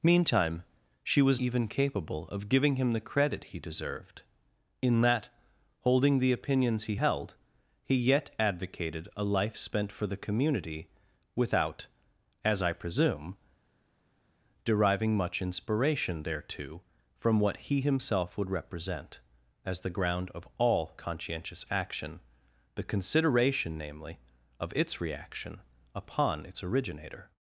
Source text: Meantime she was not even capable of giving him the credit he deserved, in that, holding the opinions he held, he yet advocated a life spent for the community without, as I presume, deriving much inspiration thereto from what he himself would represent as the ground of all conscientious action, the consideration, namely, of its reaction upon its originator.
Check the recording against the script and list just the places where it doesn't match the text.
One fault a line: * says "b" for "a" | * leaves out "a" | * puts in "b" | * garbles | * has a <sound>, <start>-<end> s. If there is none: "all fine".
* leaves out "not"